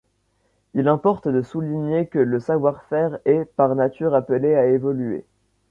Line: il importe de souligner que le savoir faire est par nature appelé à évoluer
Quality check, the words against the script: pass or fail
pass